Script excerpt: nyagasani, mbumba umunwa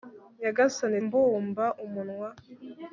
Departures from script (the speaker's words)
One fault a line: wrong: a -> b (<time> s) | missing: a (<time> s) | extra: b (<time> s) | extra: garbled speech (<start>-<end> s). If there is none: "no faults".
no faults